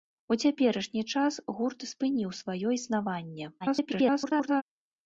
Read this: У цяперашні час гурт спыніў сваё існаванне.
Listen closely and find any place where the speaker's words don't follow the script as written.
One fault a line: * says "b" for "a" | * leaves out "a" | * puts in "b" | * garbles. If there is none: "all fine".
* garbles